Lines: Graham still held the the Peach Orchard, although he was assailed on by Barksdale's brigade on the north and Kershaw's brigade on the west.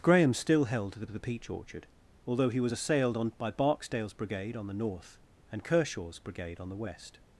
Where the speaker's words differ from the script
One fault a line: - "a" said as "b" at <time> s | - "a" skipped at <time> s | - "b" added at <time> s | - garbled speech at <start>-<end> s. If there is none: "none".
none